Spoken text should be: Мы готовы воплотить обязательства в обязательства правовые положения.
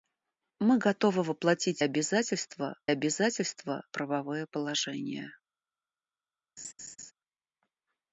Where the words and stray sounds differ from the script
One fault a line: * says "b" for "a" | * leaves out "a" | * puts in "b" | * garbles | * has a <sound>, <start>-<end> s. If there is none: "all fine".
* has a laugh, 6.6-7.1 s